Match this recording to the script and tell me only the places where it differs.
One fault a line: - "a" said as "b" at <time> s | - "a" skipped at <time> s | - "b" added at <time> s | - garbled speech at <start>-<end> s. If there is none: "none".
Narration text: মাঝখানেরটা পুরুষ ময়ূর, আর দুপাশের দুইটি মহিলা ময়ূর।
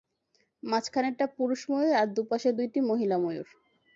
none